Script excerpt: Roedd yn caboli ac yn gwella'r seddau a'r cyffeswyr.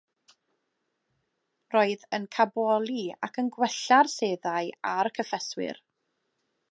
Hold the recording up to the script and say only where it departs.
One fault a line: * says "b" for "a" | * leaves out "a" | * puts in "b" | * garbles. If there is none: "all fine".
all fine